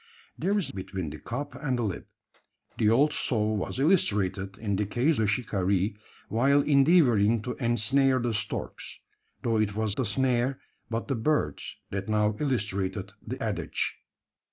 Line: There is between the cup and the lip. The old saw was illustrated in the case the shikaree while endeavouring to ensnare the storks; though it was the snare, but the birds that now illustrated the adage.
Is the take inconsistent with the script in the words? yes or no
no